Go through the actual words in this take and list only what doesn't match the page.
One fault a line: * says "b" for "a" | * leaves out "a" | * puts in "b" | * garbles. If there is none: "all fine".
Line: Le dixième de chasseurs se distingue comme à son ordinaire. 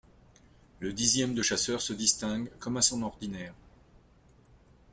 all fine